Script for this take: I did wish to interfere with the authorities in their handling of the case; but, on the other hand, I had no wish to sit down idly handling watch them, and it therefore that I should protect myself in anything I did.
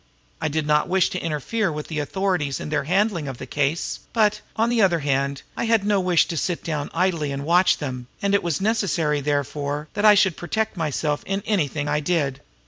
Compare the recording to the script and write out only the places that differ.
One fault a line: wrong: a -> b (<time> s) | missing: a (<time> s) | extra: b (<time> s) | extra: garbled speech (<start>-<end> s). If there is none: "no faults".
extra: not (0.7 s)
wrong: handling -> and (7.3 s)
extra: was necessary (8.4 s)